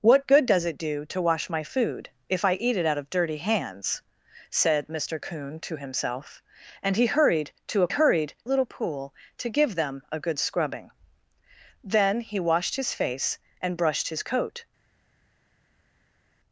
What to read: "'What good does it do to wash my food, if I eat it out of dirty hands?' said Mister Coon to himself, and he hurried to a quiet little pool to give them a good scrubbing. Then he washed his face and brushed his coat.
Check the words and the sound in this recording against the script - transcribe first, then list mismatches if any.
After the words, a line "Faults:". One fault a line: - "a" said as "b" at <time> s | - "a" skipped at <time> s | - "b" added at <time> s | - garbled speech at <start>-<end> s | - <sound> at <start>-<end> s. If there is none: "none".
"'What good does it do to wash my food, if I eat it out of dirty hands?' said Mister Coon to himself, and he hurried to a hurried little pool to give them a good scrubbing. Then he washed his face and brushed his coat.
Faults:
- "quiet" said as "hurried" at 7.9 s